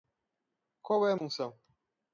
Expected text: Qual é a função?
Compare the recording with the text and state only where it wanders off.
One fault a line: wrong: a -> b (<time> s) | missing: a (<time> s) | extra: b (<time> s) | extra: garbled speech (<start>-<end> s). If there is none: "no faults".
no faults